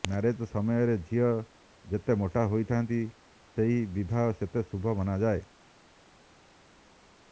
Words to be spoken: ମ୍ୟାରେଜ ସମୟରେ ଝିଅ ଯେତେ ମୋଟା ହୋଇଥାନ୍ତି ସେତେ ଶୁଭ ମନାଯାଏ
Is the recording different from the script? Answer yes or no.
yes